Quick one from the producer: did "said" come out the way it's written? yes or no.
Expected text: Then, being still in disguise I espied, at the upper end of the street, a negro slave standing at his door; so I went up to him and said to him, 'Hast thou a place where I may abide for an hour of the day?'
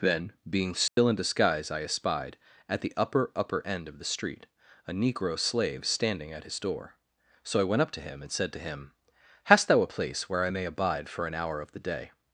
yes